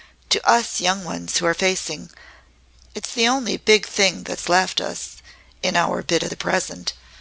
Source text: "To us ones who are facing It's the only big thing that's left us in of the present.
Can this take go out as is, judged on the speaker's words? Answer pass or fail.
fail